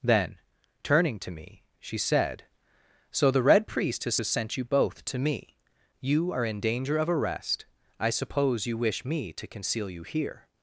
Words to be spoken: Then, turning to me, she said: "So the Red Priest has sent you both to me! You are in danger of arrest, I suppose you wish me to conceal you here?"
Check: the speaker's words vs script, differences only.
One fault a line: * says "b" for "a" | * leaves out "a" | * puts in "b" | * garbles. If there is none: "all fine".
* puts in "has"